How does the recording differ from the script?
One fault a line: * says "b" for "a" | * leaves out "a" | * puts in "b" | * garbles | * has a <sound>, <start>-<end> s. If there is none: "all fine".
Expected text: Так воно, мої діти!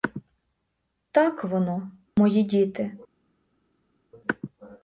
all fine